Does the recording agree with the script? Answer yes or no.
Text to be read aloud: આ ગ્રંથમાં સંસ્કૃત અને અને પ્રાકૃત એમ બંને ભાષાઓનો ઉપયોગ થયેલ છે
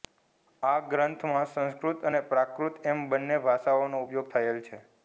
no